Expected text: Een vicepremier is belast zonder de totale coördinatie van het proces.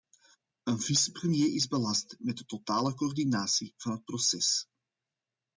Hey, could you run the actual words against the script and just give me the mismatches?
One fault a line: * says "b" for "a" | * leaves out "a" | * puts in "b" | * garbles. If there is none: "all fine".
* says "met" for "zonder"